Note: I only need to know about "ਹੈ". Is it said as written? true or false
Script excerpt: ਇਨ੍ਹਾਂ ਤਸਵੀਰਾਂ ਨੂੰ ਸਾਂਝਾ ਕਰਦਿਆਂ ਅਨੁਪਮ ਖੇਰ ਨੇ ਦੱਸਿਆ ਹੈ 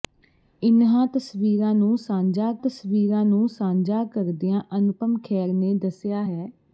true